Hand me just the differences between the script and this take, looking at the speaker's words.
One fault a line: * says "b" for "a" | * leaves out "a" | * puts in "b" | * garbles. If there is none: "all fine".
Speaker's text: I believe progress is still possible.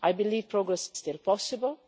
* leaves out "is"